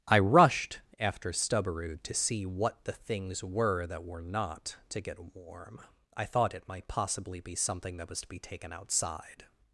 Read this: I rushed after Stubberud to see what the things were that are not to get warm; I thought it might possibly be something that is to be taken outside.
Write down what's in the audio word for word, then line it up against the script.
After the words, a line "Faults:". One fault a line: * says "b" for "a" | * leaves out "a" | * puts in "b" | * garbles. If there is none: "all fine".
I rushed after Stubberud to see what the things were that were not to get warm; I thought it might possibly be something that was to be taken outside.
Faults:
* says "were" for "are"
* says "was" for "is"